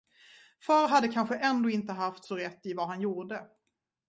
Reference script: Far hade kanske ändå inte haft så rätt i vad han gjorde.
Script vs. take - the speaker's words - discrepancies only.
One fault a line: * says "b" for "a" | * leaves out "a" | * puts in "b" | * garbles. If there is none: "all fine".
all fine